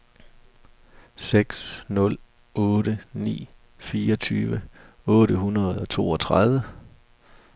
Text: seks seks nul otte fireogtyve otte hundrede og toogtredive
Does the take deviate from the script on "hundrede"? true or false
false